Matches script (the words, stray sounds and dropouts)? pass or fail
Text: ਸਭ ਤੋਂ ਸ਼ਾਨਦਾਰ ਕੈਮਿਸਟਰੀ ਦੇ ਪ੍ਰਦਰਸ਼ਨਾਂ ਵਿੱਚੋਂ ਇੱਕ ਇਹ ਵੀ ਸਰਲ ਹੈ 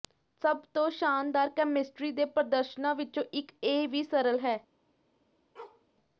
fail